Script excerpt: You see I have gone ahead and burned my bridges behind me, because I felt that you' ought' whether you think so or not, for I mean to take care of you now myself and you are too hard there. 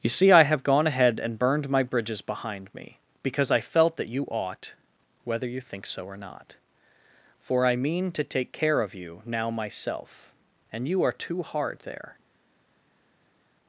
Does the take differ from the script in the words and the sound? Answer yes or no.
no